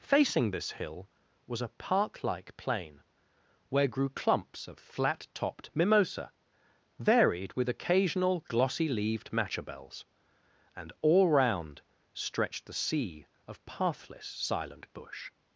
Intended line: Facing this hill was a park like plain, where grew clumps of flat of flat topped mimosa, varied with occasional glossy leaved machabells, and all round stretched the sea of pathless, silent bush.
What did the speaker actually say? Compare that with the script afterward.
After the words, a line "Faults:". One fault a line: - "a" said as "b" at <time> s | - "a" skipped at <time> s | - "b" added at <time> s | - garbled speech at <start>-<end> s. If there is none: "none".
Facing this hill was a park like plain, where grew clumps of flat topped mimosa, varied with occasional glossy leaved machabells, and all round stretched the sea of pathless, silent bush.
Faults:
- "of flat" skipped at 5.3 s